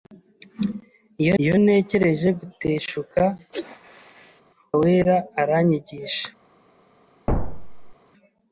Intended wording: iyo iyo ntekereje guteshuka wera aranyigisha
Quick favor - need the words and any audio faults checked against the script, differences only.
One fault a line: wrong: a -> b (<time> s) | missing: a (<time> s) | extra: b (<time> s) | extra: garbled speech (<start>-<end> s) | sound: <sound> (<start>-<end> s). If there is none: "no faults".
sound: sneeze (3.5-4.4 s)
sound: thud (7.3-7.9 s)